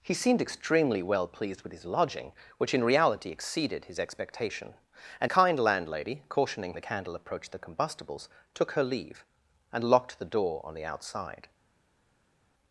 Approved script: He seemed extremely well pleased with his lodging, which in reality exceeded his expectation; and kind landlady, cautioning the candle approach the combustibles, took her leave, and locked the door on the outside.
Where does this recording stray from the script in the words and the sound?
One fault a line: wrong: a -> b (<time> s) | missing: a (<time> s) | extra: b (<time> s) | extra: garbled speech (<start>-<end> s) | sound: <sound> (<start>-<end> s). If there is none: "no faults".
no faults